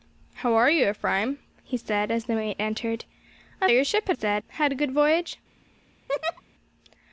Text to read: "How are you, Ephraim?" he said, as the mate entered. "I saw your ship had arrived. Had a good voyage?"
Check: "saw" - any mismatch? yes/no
yes